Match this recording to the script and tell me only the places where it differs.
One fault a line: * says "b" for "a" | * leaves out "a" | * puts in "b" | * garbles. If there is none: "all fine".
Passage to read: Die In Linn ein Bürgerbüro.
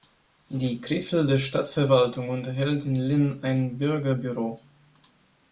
* puts in "Krefelder Stadtverwaltung unterhält"